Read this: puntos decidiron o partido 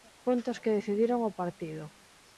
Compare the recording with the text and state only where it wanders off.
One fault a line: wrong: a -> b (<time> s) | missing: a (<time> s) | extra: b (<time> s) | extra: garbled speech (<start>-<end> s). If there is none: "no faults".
extra: que (0.6 s)